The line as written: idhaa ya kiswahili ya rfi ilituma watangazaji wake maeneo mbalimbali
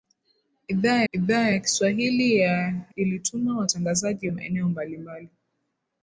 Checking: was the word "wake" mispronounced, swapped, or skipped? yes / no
yes